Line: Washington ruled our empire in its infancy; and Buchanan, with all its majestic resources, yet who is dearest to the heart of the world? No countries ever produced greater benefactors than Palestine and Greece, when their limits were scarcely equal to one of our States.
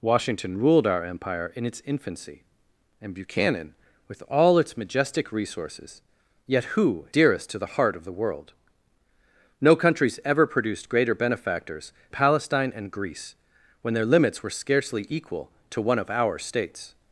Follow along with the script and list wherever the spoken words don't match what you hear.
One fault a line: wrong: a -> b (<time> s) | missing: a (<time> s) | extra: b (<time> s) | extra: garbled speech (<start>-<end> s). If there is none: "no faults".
missing: is (7.0 s)
missing: than (11.9 s)